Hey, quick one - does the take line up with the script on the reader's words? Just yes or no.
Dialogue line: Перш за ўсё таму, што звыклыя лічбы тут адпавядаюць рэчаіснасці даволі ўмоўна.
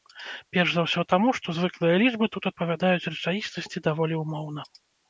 yes